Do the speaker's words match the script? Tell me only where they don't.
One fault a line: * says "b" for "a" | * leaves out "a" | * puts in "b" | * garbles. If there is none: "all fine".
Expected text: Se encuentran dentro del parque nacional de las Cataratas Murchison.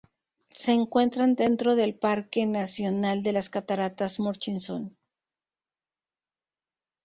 all fine